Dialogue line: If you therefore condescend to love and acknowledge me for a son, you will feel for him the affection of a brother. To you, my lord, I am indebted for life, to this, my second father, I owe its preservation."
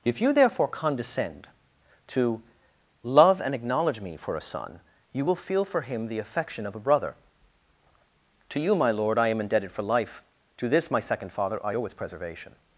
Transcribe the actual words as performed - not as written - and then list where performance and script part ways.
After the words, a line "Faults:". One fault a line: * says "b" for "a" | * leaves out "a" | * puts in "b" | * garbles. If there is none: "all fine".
If you therefore condescend to love and acknowledge me for a son, you will feel for him the affection of a brother. To you, my lord, I am indebted for life, to this, my second father, I owe its preservation."
Faults:
all fine